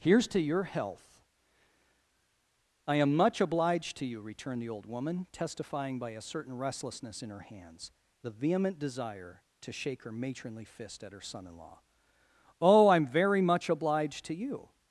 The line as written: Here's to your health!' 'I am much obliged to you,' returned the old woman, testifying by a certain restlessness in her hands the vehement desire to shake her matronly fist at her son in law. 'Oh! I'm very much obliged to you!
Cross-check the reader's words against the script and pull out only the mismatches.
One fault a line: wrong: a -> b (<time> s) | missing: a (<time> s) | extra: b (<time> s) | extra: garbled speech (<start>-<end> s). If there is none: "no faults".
no faults